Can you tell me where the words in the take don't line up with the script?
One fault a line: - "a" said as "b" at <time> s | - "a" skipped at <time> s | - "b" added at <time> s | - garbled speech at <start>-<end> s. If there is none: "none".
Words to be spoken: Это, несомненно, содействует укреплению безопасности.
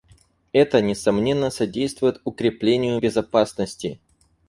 none